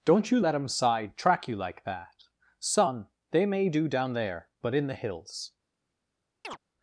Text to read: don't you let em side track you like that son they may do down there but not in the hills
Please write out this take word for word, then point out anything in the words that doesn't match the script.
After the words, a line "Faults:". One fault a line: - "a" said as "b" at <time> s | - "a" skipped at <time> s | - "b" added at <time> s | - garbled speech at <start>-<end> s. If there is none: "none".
don't you let em side track you like that son they may do down there but in the hills
Faults:
- "not" skipped at 4.7 s